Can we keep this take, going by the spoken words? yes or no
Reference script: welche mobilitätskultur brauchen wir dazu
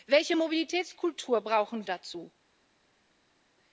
no